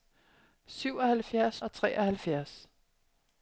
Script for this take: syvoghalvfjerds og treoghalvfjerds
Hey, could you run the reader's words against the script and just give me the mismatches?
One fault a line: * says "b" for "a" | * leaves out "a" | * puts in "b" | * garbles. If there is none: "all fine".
all fine